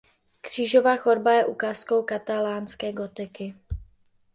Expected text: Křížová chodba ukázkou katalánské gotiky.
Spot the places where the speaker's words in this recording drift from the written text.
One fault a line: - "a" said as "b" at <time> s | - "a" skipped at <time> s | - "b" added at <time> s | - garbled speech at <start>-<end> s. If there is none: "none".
- "je" added at 1.3 s